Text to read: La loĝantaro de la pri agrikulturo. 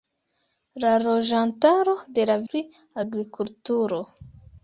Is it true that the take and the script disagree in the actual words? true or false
false